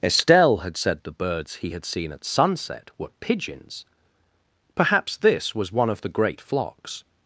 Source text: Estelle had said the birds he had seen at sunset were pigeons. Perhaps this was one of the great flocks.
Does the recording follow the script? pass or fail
pass